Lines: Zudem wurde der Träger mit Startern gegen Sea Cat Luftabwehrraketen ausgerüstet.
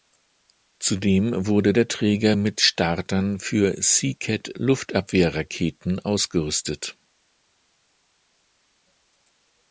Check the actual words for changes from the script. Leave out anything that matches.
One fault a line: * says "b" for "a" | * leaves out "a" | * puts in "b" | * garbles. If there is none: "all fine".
* says "für" for "gegen"